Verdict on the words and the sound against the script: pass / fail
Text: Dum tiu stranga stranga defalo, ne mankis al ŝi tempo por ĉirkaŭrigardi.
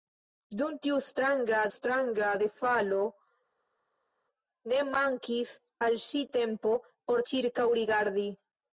pass